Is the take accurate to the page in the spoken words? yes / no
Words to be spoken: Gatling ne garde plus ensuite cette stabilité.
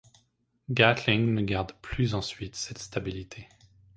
yes